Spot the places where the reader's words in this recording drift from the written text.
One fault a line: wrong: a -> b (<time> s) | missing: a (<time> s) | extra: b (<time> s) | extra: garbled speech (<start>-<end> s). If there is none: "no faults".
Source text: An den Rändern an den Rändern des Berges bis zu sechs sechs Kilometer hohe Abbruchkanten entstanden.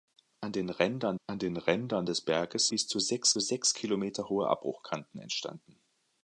no faults